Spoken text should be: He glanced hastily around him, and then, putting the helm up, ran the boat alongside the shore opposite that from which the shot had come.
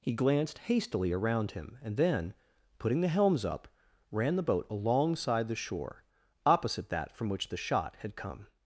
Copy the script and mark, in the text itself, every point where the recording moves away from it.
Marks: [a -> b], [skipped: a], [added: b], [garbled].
He glanced hastily around him, and then, putting the [helm -> helms] up, ran the boat alongside the shore opposite that from which the shot had come.